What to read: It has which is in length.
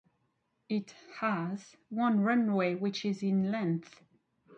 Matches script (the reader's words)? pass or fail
fail